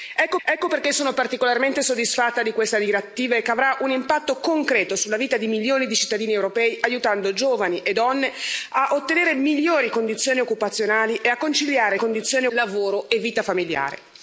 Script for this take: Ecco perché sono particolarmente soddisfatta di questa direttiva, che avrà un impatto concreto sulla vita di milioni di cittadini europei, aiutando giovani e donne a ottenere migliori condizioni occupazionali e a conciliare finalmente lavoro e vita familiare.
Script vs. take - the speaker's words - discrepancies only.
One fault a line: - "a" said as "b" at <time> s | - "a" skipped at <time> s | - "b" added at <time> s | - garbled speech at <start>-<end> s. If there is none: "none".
- "ecco" added at 0.4 s
- "finalmente" said as "condizioni" at 11.9 s